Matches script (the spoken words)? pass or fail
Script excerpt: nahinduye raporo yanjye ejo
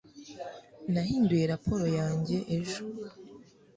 pass